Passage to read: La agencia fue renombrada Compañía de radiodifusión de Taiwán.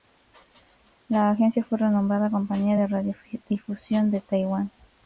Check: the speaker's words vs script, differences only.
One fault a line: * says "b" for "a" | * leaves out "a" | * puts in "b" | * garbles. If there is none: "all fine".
all fine